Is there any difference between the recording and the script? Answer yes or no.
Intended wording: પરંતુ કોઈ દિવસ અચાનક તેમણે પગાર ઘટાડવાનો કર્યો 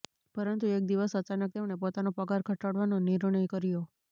yes